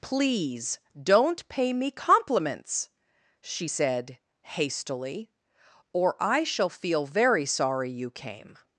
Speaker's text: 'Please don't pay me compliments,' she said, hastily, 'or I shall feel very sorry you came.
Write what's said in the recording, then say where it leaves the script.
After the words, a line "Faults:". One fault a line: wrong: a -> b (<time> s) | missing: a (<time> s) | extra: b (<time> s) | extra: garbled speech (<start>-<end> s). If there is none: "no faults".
'Please don't pay me compliments,' she said, hastily, 'or I shall feel very sorry you came.
Faults:
no faults